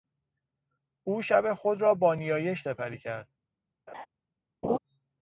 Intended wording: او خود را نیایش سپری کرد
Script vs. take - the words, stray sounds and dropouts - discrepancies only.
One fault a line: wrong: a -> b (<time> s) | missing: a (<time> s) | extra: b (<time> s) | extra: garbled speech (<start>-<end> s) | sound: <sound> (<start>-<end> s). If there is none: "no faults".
extra: شب (1.2 s)
extra: با (1.9 s)
sound: laugh (3.9-4.1 s)
sound: laugh (4.6-4.8 s)